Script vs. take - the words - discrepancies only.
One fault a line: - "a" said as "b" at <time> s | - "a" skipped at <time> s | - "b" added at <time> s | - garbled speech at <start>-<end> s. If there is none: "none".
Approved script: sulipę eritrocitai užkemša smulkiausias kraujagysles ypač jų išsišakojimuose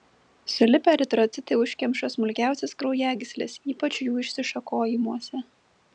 none